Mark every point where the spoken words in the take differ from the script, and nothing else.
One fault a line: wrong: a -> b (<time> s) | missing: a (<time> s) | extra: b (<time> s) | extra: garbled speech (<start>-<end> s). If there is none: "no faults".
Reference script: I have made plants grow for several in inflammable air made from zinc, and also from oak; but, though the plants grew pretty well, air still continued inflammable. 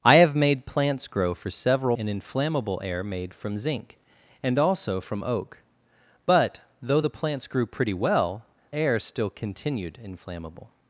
no faults